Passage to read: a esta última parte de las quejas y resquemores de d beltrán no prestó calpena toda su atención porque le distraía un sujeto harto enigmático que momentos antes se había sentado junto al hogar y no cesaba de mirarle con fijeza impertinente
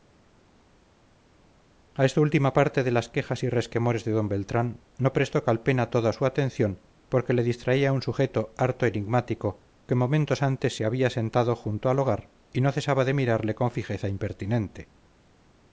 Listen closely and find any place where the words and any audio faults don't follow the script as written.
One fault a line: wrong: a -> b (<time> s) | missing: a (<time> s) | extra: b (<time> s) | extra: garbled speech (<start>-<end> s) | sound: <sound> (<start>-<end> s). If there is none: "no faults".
no faults